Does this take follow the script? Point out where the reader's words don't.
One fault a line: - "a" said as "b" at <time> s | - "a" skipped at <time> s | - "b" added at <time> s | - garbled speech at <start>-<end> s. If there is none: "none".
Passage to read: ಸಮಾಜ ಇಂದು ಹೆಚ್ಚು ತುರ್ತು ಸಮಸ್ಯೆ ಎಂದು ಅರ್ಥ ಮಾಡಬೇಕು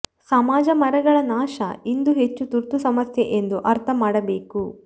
- "ಮರಗಳ ನಾಶ" added at 0.8 s